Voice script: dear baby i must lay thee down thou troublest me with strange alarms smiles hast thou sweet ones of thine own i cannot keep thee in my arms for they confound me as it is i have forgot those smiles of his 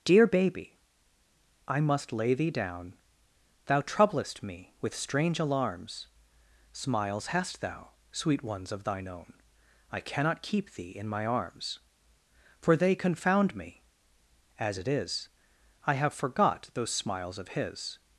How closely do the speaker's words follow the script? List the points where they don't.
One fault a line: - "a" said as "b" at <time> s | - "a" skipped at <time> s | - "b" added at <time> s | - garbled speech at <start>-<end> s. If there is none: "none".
none